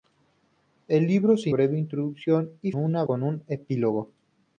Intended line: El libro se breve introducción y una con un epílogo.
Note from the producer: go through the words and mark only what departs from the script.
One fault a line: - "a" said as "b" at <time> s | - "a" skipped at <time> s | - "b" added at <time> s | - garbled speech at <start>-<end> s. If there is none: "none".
none